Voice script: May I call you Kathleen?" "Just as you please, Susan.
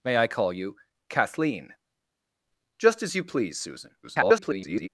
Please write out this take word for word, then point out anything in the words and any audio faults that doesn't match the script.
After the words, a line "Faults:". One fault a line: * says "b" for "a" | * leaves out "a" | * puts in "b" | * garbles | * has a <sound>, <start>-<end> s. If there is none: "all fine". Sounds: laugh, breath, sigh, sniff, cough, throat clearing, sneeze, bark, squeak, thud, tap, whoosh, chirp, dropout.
May I call you Kathleen?" "Just as you please, Susan. [garbled]
Faults:
* garbles